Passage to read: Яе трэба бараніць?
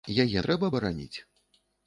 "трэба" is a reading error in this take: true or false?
false